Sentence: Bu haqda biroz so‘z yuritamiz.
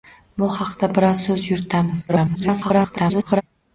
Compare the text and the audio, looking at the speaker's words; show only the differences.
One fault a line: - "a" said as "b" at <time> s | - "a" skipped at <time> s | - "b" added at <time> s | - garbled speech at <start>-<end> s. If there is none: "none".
- garbled speech at 2.1-3.4 s